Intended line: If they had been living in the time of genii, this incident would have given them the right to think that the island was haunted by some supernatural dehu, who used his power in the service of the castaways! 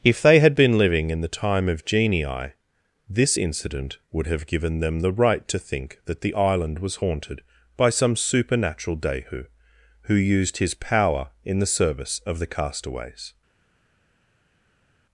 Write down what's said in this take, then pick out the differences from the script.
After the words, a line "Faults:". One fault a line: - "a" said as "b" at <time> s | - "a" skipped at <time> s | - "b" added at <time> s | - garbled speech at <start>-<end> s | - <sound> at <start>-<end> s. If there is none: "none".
If they had been living in the time of genii, this incident would have given them the right to think that the island was haunted by some supernatural dehu, who used his power in the service of the castaways!
Faults:
none